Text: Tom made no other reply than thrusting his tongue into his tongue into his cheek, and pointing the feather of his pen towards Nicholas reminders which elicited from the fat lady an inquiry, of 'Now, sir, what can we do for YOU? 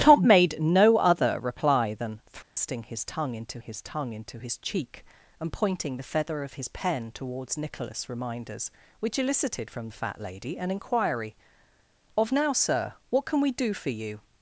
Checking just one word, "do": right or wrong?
right